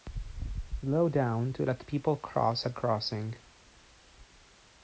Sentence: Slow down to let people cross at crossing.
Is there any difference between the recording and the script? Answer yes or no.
no